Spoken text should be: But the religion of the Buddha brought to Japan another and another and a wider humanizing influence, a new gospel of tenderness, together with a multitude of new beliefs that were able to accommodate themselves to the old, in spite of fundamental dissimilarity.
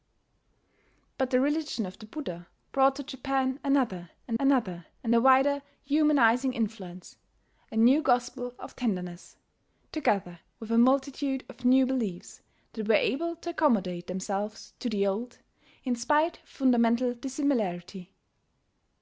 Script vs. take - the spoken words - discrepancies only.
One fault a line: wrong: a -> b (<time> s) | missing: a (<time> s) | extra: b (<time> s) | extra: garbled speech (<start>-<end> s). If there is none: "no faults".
no faults